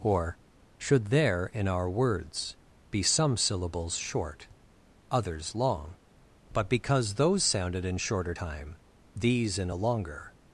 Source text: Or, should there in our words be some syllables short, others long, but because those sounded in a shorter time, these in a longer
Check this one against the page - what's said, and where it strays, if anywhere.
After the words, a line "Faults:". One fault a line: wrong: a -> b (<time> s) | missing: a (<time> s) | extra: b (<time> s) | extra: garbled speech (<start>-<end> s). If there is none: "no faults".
Or, should there in our words be some syllables short, others long, but because those sounded in shorter time, these in a longer
Faults:
missing: a (8.0 s)